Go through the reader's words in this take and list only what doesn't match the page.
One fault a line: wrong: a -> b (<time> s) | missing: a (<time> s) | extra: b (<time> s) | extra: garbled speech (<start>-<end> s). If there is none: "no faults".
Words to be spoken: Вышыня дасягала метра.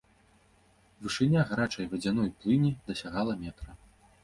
extra: гарачай вадзяной плыні (1.5 s)